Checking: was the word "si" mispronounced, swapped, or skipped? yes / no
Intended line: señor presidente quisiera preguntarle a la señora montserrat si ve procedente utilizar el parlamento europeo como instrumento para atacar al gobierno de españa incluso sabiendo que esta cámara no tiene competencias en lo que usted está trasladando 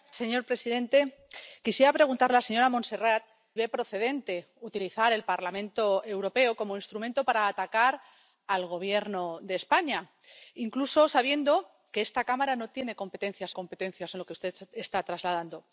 yes